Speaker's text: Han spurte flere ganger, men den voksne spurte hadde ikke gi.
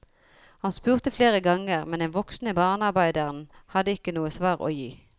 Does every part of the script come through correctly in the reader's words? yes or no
no